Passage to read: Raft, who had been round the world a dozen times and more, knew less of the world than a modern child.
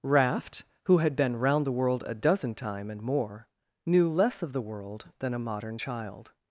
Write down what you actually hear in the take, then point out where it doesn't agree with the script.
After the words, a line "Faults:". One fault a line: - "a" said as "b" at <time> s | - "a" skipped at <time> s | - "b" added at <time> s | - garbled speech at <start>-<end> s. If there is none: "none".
Raft, who had been round the world a dozen time and more, knew less of the world than a modern child.
Faults:
- "times" said as "time" at 2.5 s